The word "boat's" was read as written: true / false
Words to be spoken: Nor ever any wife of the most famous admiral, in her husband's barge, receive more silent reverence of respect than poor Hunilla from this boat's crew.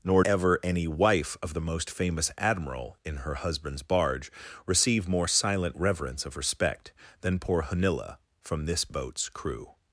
true